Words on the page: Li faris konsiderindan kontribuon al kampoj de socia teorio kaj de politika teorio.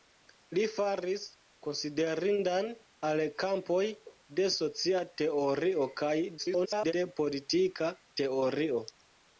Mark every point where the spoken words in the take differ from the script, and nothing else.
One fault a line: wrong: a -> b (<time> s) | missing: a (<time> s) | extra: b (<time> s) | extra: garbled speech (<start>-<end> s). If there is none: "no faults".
missing: kontribuon (2.7 s)
extra: garbled speech (6.4-6.9 s)